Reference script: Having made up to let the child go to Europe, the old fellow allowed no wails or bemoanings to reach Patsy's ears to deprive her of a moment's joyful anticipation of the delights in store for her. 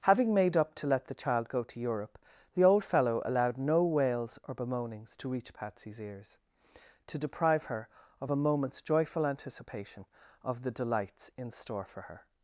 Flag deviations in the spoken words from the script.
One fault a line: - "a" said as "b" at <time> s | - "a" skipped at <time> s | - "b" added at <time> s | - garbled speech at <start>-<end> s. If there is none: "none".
none